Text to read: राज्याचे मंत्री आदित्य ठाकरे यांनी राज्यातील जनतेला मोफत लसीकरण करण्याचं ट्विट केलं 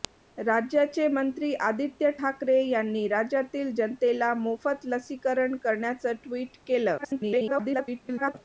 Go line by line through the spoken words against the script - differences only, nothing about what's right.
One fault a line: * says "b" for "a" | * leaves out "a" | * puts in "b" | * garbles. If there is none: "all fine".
* garbles